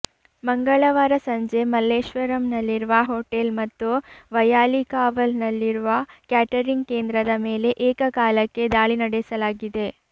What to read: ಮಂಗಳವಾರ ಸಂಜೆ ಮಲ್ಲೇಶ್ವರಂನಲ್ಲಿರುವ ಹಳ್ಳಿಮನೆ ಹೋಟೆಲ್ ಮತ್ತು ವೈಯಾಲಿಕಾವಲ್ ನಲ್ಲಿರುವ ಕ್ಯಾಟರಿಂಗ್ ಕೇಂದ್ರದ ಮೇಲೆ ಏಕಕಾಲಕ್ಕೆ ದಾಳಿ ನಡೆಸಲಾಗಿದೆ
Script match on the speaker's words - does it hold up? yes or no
no